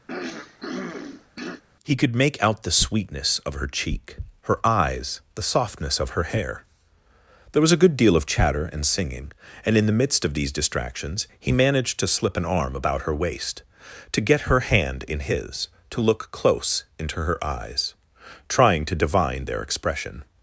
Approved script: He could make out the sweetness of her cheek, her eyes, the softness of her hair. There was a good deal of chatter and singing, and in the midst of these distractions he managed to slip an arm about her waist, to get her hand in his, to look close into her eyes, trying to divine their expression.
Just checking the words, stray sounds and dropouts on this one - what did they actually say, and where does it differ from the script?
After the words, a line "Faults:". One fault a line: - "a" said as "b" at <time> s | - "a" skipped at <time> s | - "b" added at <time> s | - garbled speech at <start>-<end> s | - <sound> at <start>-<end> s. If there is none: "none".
He could make out the sweetness of her cheek, her eyes, the softness of her hair. There was a good deal of chatter and singing, and in the midst of these distractions he managed to slip an arm about her waist, to get her hand in his, to look close into her eyes, trying to divine their expression.
Faults:
- throat clearing at 0.1-1.6 s